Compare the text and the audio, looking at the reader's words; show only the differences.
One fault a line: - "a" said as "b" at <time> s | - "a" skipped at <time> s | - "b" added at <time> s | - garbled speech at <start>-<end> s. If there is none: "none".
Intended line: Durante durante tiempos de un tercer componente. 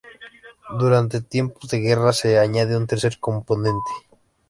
- "durante" skipped at 1.2 s
- "guerra se añade" added at 1.8 s